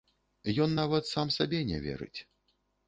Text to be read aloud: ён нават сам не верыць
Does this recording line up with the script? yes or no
no